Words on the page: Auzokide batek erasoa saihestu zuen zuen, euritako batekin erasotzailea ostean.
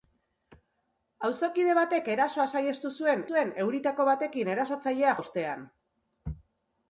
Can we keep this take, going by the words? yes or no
yes